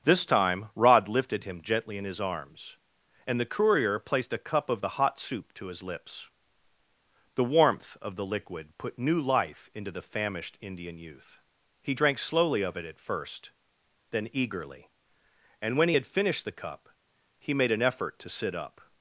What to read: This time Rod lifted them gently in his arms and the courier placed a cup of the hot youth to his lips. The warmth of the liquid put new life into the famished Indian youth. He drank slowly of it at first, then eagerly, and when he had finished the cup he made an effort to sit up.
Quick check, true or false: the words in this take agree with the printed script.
false